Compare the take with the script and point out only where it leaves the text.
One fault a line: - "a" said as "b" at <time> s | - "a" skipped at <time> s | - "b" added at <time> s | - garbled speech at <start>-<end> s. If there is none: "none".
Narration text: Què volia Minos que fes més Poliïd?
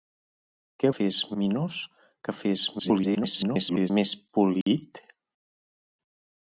- "volia" said as "fes" at 0.9 s
- garbled speech at 2.8-3.9 s